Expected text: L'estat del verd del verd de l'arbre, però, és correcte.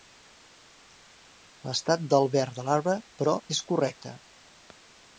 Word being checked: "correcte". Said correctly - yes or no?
yes